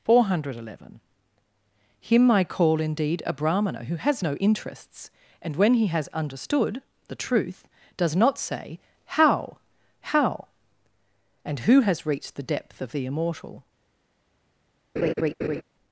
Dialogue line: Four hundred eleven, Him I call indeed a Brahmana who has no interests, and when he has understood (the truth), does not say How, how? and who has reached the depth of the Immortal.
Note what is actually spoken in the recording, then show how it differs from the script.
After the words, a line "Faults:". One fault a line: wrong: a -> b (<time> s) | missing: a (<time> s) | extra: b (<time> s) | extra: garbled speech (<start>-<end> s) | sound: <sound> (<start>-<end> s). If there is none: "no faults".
Four hundred eleven, Him I call indeed a Brahmana who has no interests, and when he has understood (the truth), does not say How, how? and who has reached the depth of the Immortal.
Faults:
sound: laugh (15.0-15.6 s)